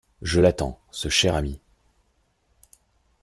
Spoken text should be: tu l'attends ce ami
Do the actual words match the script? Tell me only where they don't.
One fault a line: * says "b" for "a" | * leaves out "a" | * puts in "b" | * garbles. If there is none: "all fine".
* says "je" for "tu"
* puts in "cher"